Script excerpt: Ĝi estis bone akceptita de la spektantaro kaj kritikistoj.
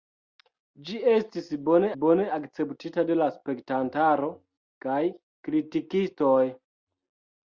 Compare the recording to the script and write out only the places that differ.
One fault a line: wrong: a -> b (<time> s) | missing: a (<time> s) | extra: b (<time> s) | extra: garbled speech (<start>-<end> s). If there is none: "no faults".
extra: bone (2.0 s)